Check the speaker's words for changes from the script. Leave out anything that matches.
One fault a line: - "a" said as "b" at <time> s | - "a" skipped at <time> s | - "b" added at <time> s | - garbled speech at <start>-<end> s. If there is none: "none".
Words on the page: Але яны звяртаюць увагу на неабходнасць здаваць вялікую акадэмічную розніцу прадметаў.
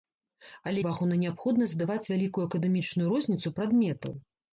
- "яны звяртаюць" skipped at 0.8 s